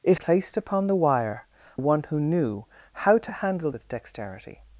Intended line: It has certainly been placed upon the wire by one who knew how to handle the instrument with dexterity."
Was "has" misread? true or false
true